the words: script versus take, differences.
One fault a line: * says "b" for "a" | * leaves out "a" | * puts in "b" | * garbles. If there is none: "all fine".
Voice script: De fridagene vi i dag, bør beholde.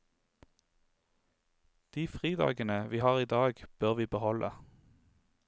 * puts in "har"
* puts in "vi"